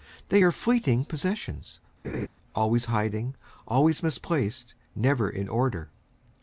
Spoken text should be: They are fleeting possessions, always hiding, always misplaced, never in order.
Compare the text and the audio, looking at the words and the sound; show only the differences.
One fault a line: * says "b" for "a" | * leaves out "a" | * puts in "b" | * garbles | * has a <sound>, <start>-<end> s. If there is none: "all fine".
* has a laugh, 2.0-2.3 s